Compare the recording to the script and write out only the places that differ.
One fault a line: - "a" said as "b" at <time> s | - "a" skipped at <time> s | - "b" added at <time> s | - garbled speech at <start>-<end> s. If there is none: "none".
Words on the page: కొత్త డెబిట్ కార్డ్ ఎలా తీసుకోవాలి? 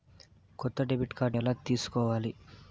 none